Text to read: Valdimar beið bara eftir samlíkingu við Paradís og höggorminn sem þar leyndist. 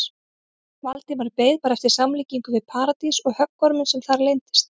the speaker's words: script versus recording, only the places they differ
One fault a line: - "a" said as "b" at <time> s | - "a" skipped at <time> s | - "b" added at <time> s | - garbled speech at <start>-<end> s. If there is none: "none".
none